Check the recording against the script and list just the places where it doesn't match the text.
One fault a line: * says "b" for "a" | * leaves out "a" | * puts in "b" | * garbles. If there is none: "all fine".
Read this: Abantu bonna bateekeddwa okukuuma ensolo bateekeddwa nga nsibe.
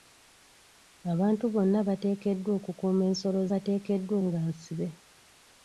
all fine